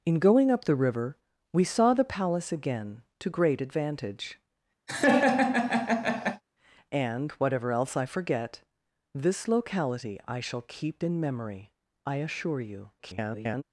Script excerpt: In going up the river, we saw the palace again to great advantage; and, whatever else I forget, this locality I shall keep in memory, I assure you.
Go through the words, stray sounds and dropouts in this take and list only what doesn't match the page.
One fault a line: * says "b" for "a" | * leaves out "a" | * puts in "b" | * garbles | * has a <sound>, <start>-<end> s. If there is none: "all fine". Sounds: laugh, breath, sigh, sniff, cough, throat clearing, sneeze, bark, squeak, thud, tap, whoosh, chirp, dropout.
* has a laugh, 4.9-6.4 s
* garbles